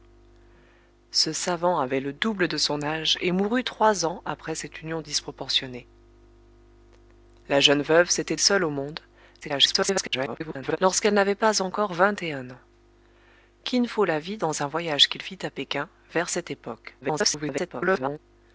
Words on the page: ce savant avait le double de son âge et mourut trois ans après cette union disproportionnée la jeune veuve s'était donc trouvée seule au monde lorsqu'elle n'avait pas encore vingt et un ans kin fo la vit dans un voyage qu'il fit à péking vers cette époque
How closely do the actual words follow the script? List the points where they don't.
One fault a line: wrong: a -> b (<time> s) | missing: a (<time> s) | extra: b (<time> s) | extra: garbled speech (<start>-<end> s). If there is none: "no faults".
missing: donc trouvée (8.3 s)
extra: garbled speech (9.4-10.8 s)
extra: garbled speech (17.0-18.2 s)